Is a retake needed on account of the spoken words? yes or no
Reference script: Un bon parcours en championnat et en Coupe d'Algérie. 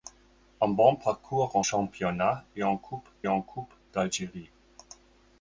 yes